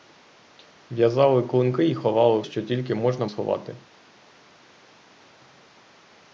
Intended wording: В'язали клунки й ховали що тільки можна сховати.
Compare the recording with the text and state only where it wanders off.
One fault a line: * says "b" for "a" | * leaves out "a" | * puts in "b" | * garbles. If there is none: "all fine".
all fine